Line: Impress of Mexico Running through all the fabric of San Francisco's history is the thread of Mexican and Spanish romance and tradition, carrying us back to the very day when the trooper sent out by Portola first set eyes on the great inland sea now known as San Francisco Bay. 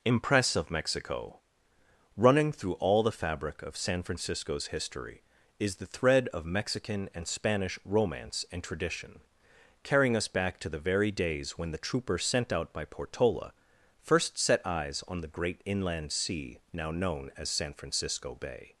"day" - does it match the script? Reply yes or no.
no